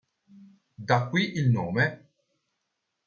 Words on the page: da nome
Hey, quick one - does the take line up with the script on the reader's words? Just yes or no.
no